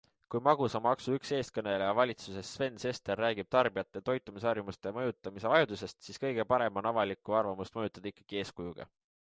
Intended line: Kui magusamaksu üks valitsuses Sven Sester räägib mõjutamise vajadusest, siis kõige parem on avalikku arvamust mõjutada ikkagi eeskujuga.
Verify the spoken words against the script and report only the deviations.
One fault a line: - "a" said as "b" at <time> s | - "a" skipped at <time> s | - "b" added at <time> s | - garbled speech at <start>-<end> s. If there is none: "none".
- "eestkõneleja" added at 1.4 s
- "tarbijate toitumisharjumuste" added at 3.6 s